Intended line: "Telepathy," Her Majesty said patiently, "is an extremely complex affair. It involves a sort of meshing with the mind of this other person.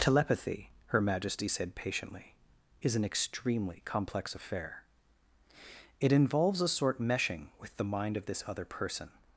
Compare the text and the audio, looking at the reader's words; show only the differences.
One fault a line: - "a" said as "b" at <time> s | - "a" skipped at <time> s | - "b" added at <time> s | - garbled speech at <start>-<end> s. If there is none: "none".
- "of" skipped at 7.0 s